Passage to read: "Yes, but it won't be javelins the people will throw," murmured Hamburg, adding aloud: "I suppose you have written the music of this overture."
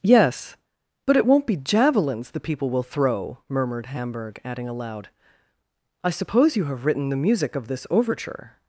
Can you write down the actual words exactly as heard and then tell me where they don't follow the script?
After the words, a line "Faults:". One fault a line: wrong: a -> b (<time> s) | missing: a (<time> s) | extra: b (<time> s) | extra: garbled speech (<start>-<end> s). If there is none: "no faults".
"Yes, but it won't be javelins the people will throw," murmured Hamburg, adding aloud: "I suppose you have written the music of this overture."
Faults:
no faults